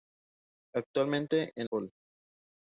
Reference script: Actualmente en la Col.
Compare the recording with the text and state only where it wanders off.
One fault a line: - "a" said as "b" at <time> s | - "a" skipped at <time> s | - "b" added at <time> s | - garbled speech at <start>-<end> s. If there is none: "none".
- "la" skipped at 1.7 s